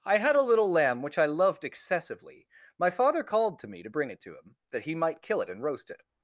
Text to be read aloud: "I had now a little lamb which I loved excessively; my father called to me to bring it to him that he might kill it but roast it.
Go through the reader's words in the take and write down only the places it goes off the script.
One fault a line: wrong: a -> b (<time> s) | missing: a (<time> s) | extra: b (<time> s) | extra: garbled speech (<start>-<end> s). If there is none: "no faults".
missing: now (0.3 s)
wrong: but -> and (5.5 s)